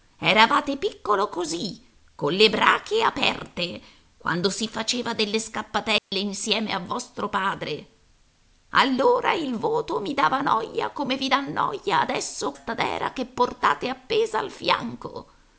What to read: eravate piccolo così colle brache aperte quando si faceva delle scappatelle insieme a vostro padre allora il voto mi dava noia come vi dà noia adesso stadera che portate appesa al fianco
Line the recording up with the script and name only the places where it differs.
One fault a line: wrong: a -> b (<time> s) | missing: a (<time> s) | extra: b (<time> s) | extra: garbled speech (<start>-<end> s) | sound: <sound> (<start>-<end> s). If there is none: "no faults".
sound: dropout (6.0-6.1 s)